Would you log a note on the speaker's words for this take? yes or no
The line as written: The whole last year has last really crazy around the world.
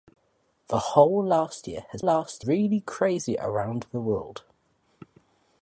no